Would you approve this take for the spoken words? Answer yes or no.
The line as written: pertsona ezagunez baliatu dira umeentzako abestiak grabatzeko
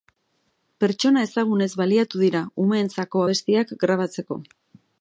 yes